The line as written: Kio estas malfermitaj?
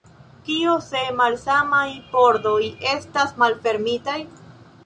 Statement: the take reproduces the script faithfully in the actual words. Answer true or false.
false